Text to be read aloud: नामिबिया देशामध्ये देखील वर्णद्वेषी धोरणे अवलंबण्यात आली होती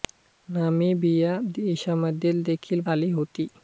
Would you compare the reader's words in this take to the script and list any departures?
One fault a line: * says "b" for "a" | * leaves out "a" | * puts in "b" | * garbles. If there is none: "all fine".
* leaves out "वर्णद्वेषी धोरणे अवलंबण्यात"